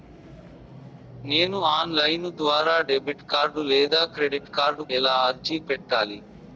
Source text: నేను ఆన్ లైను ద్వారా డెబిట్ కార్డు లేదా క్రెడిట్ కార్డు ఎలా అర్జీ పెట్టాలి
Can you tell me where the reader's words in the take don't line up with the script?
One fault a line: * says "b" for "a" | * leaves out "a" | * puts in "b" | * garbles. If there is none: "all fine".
all fine